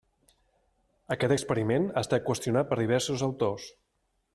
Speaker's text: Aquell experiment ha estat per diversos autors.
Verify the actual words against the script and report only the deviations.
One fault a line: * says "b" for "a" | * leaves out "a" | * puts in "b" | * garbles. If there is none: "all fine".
* says "Aquest" for "Aquell"
* puts in "qüestionat"